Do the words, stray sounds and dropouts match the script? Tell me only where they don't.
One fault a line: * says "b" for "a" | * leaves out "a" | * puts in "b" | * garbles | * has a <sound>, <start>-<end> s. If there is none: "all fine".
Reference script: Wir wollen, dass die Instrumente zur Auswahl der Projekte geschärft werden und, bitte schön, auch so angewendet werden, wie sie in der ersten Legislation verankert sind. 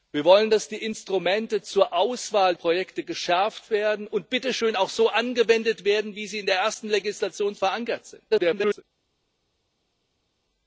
* leaves out "der"
* garbles